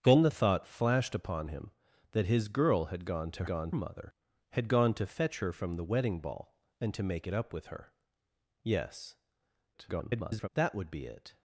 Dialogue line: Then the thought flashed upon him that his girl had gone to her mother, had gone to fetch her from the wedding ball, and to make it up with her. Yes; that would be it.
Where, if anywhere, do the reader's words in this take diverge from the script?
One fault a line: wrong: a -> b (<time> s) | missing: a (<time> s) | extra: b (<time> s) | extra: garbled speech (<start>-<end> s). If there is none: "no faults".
wrong: her -> gone (3.4 s)
extra: garbled speech (9.7-10.5 s)